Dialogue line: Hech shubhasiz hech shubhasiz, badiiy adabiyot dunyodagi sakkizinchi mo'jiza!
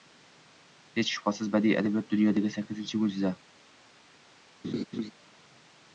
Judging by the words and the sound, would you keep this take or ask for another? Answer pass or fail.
fail